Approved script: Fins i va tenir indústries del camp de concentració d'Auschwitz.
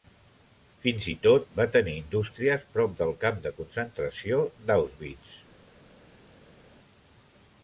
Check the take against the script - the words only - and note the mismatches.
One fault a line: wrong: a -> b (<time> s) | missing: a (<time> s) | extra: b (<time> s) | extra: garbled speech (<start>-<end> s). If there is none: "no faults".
extra: tot (1.2 s)
extra: prop (2.8 s)